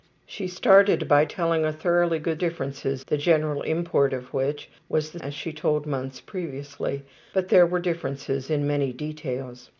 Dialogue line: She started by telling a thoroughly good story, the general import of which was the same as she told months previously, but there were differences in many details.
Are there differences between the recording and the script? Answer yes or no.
yes